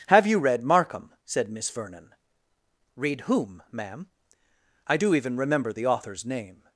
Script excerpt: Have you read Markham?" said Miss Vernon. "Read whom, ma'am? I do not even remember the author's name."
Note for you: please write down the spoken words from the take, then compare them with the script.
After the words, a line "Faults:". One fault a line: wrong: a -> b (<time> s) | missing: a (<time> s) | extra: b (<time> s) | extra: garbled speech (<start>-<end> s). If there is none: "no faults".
Have you read Markham?" said Miss Vernon. "Read whom, ma'am? I do even remember the author's name."
Faults:
missing: not (5.2 s)